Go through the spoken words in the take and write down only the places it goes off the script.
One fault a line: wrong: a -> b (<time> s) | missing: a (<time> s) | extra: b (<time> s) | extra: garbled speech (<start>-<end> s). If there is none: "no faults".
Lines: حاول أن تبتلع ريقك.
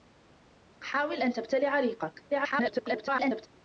extra: garbled speech (2.3-3.5 s)